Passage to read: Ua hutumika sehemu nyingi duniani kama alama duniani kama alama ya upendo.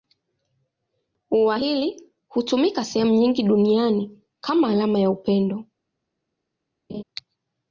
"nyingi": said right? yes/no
yes